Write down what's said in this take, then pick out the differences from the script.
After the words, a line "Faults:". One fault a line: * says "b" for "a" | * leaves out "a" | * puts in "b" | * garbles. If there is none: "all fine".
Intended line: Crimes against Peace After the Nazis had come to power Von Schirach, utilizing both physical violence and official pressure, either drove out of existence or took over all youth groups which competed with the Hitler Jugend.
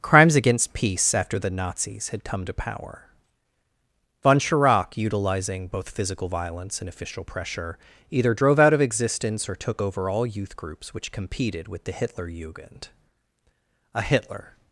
Crimes against Peace After the Nazis had come to power Von Schirach, utilizing both physical violence and official pressure, either drove out of existence or took over all youth groups which competed with the Hitler Jugend. A Hitler
Faults:
* puts in "A Hitler"